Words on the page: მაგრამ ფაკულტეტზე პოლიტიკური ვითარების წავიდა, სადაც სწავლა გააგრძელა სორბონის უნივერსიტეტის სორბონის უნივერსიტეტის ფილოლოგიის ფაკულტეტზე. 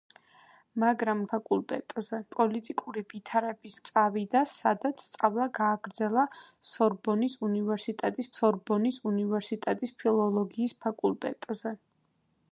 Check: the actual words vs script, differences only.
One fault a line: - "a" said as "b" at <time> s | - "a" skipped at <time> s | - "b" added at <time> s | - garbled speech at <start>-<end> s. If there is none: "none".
none